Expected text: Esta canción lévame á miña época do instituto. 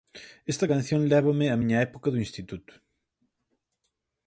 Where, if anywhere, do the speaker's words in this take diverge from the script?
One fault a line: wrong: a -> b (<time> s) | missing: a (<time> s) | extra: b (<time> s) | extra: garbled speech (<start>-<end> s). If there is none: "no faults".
no faults